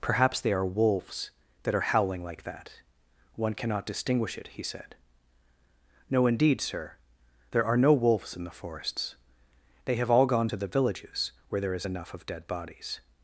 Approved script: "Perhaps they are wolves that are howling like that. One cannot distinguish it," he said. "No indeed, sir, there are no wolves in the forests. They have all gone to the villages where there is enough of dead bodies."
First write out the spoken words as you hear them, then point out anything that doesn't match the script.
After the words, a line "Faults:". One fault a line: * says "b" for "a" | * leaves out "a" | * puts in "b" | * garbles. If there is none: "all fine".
"Perhaps they are wolves that are howling like that. One cannot distinguish it," he said. "No indeed, sir, there are no wolves in the forests. They have all gone to the villages where there is enough of dead bodies."
Faults:
all fine